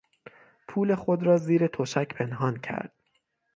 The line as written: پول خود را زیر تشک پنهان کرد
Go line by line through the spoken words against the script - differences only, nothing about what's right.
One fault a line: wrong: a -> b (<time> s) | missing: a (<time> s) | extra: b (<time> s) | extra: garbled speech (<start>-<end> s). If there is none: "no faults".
no faults